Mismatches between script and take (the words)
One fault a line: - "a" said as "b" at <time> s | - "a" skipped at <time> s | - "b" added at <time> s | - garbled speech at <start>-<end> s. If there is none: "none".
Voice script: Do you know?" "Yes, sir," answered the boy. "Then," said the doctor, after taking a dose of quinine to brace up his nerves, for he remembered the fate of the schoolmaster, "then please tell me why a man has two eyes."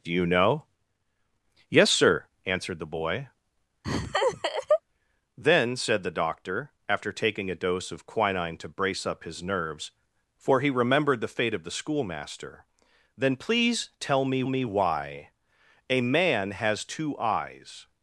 - "me" added at 14.5 s